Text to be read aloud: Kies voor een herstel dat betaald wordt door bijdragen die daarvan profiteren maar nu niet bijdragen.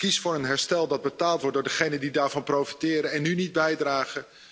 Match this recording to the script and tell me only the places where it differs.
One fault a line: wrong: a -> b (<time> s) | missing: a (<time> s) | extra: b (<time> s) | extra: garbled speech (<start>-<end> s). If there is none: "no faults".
wrong: bijdragen -> degenen (1.6 s)
wrong: maar -> en (3.1 s)